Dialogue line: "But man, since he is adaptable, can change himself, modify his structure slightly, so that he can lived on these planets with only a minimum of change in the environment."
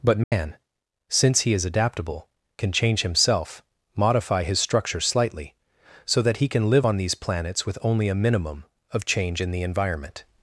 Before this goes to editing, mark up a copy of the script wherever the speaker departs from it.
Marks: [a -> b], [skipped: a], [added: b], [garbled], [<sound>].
"But man, [dropout] since he is adaptable, can change himself, modify his structure slightly, so that he can [lived -> live] on these planets with only a minimum of change in the environment."